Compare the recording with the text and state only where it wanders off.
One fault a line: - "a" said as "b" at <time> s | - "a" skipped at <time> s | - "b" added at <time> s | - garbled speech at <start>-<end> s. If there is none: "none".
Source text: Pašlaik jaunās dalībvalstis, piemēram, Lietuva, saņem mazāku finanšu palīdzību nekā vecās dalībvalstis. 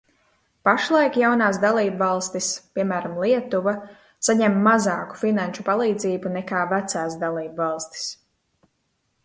none